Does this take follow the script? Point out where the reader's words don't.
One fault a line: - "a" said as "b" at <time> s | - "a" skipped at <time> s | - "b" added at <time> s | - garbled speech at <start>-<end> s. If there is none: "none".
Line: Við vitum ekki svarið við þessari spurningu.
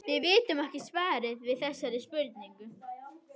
none